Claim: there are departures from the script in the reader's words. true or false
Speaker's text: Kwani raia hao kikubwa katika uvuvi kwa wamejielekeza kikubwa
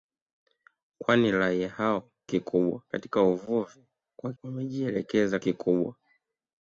false